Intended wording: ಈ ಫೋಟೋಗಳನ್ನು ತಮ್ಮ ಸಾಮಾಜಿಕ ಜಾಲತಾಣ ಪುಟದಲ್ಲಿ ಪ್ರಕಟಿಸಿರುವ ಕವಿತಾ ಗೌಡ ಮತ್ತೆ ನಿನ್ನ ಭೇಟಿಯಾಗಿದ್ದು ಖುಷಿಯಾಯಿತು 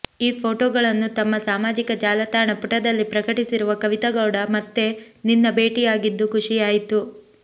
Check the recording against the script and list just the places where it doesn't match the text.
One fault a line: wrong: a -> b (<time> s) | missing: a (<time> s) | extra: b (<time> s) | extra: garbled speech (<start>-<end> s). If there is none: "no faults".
no faults